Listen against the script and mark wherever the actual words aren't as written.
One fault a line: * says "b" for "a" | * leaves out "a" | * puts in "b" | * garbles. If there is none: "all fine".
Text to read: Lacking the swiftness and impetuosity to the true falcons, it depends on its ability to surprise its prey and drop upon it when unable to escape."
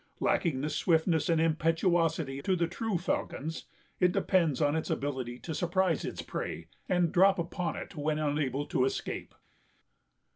all fine